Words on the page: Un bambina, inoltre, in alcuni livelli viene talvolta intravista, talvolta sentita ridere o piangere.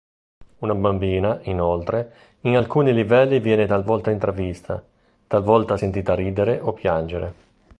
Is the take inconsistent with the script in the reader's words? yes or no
yes